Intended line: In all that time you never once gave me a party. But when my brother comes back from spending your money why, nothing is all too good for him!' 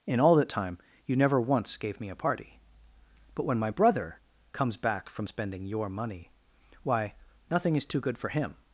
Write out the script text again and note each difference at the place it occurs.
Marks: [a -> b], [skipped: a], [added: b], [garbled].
In all that time you never once gave me a party. But when my brother comes back from spending your money why, nothing is [skipped: all] too good for him!'